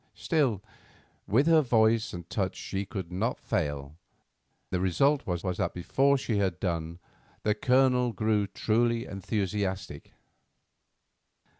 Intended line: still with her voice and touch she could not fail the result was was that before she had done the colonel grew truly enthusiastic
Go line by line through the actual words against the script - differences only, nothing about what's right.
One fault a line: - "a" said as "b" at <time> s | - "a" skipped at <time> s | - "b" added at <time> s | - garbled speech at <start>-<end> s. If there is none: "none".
none